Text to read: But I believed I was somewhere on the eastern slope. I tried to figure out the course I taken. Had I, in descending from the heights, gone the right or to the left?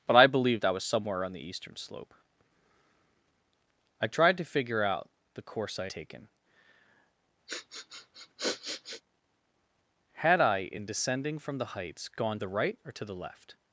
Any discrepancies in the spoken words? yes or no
no